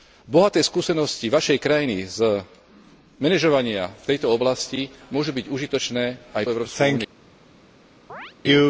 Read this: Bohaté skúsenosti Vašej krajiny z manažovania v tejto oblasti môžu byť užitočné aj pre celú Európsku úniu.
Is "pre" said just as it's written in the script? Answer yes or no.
no